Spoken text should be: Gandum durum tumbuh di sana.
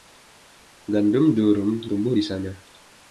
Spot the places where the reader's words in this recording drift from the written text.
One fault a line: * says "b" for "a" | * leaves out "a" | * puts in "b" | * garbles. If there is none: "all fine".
all fine